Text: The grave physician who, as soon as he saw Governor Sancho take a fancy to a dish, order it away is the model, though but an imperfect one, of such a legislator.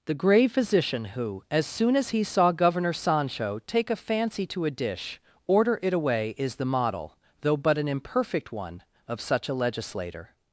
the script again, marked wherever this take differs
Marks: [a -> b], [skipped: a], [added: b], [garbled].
The grave physician who, as soon as he saw Governor Sancho take a fancy to a dish, order it away is the model, though but an imperfect one, of such a legislator.